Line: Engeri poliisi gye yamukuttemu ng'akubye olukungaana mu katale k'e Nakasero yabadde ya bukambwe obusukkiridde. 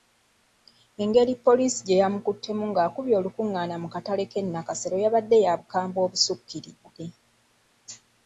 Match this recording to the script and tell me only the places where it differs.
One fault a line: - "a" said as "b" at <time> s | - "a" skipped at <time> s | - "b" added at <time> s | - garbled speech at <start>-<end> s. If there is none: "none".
none